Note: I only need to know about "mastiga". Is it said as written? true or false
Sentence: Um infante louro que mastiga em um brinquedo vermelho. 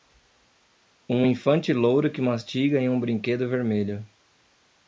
true